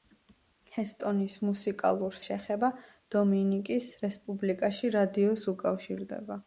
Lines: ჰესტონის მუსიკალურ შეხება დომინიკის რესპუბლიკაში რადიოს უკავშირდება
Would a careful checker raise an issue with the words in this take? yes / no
no